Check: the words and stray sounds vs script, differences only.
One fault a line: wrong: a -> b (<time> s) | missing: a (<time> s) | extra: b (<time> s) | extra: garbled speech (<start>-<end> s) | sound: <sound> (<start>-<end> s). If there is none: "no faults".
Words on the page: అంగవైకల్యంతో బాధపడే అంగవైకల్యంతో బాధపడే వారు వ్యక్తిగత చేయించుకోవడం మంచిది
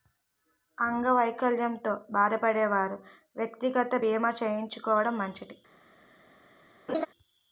missing: అంగవైకల్యంతో బాధపడే (2.6 s)
extra: బీమా (4.0 s)
sound: laugh (6.9-7.1 s)